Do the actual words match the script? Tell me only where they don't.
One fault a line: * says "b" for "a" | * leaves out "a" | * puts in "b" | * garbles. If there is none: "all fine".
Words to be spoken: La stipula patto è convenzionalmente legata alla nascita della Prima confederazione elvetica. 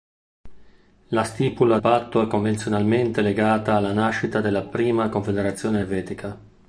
all fine